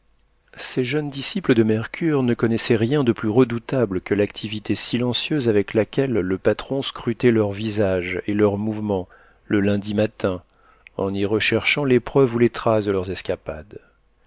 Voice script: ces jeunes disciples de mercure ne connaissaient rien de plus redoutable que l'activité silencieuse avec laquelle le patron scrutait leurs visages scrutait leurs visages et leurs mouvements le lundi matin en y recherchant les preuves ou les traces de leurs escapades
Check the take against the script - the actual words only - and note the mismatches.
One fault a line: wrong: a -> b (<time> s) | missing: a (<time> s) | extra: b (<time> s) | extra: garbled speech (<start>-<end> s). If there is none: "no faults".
missing: scrutait leurs visages (8.2 s)